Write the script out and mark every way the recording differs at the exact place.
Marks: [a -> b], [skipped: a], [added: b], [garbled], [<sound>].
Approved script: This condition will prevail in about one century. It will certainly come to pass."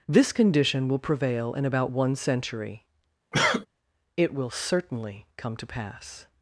This condition will prevail in about one century. [cough] It will certainly come to pass."